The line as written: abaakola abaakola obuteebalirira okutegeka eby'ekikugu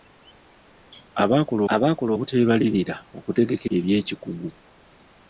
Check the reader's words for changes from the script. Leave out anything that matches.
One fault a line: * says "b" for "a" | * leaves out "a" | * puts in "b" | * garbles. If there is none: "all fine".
all fine